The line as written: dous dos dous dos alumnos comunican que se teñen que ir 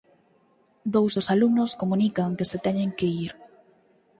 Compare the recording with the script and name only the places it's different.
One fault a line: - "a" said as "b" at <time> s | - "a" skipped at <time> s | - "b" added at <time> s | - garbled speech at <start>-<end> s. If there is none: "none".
- "dous dos" skipped at 1.3 s